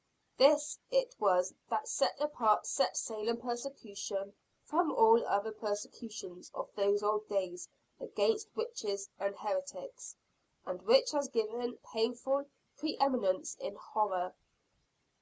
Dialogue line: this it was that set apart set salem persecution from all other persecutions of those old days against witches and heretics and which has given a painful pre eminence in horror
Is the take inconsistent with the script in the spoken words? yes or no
no